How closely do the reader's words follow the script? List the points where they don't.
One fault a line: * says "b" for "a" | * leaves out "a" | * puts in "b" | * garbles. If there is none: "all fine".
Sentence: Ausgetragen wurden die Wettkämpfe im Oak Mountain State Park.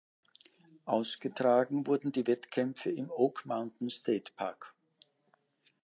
all fine